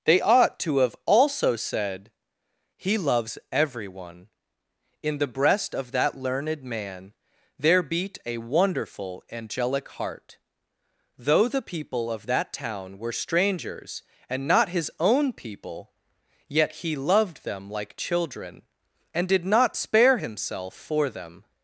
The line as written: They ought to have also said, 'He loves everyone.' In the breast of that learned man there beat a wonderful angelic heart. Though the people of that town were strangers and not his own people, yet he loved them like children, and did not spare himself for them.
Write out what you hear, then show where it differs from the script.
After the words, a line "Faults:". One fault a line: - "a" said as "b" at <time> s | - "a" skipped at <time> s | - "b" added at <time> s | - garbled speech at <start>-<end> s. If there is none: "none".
They ought to have also said, 'He loves everyone.' In the breast of that learned man there beat a wonderful angelic heart. Though the people of that town were strangers and not his own people, yet he loved them like children, and did not spare himself for them.
Faults:
none